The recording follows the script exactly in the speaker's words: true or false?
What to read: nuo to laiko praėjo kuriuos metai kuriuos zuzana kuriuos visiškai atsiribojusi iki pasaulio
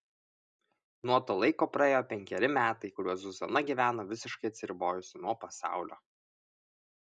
false